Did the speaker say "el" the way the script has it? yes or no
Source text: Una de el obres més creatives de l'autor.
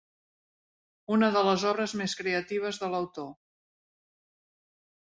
no